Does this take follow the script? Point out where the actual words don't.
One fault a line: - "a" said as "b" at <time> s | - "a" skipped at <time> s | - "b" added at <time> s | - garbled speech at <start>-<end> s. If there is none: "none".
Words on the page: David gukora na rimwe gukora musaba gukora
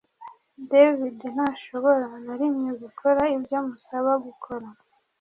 - "gukora" said as "ntashobora" at 1.4 s
- "ibyo" added at 3.4 s